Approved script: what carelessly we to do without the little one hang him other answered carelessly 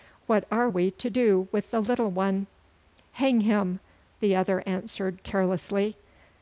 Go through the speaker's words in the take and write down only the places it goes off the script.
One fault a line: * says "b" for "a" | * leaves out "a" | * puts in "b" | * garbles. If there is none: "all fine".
* says "are" for "carelessly"
* says "with" for "without"
* puts in "the"